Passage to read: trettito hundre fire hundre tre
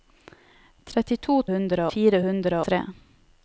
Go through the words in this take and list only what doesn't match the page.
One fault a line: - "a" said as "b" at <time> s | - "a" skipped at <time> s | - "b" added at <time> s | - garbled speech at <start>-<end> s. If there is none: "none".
none